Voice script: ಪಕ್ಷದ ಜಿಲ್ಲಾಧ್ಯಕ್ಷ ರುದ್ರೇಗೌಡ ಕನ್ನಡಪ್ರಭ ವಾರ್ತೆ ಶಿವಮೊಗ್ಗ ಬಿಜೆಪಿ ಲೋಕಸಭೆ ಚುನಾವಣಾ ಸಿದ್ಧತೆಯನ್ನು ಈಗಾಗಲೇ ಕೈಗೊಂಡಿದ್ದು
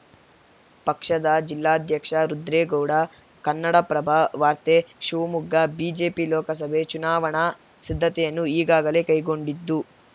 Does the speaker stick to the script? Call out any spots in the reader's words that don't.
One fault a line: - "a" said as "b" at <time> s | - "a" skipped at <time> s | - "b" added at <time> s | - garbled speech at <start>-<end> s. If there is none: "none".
none